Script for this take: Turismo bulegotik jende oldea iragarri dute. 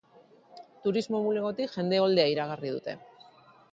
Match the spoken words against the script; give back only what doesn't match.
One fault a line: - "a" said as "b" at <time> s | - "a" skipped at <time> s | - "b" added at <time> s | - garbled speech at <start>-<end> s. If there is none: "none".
none